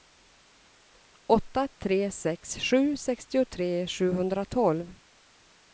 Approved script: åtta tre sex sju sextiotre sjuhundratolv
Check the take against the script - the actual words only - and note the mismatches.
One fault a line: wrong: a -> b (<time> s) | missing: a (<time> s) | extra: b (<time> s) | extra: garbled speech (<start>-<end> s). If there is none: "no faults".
no faults